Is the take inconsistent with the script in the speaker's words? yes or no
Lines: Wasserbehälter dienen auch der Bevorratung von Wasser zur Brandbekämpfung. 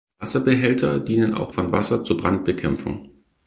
yes